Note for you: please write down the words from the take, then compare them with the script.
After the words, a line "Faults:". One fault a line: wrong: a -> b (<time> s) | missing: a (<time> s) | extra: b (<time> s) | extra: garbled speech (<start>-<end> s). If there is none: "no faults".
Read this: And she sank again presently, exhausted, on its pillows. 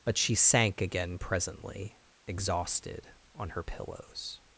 But she sank again presently, exhausted, on her pillows.
Faults:
wrong: And -> But (0.0 s)
wrong: its -> her (3.5 s)